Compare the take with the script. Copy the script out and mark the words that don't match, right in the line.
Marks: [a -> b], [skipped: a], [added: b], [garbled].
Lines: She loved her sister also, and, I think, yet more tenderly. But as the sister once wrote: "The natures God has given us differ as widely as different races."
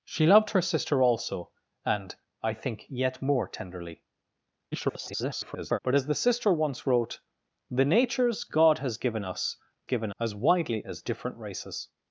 She loved her sister also, and, I think, yet more tenderly. [garbled] But as the sister once wrote: "The natures God has given us [differ -> given] as widely as different races."